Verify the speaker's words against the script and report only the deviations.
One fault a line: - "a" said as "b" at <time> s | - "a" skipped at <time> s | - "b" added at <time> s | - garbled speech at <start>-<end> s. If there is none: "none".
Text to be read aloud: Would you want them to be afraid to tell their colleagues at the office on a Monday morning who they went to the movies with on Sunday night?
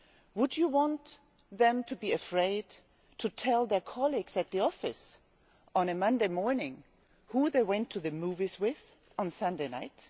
none